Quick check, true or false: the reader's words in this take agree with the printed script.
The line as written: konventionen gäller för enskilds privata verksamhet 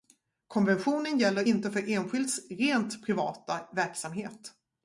false